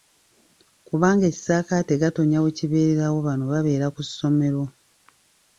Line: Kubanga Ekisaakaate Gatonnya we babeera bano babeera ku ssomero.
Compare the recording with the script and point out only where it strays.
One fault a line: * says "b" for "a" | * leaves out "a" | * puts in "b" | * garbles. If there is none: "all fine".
* says "kibeererawo" for "babeera"